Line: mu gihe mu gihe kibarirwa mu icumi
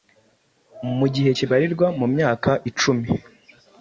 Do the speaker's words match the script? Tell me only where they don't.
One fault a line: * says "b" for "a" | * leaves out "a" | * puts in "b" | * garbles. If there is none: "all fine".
* leaves out "mu gihe"
* puts in "myaka"